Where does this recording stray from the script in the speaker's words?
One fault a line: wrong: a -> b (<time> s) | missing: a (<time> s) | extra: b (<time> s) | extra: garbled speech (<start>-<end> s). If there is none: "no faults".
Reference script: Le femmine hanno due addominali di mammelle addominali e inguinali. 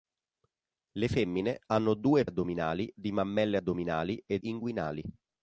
no faults